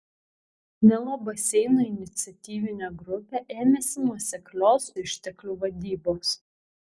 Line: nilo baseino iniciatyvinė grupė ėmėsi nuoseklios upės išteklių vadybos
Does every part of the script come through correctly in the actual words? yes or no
no